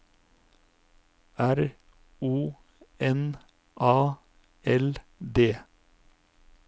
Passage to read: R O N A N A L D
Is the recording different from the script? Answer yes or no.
yes